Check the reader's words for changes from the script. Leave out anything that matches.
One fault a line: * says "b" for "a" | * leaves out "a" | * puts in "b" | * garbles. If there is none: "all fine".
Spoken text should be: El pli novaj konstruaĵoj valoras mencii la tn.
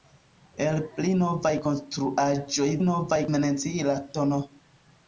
* says "novaj" for "valoras"